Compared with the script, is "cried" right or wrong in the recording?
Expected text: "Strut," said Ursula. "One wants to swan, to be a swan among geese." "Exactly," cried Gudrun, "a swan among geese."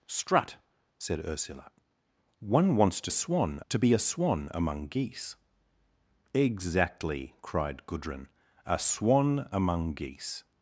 right